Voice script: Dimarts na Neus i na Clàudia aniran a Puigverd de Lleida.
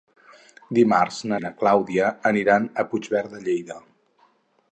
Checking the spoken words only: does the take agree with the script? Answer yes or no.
no